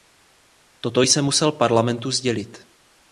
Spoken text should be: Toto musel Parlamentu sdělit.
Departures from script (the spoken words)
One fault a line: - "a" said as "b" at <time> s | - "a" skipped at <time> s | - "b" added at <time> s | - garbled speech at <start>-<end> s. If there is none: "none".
- "jsem" added at 1.0 s